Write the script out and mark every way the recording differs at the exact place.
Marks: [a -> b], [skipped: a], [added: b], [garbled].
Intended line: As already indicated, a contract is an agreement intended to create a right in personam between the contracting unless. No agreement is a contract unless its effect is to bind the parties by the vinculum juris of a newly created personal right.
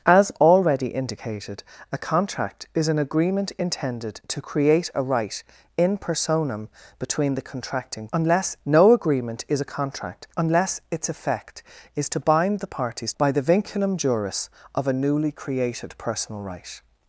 As already indicated, a contract is an agreement intended to create a right in personam between the contracting unless. No agreement is a contract unless its effect is to bind the parties by the vinculum juris of a newly created personal right.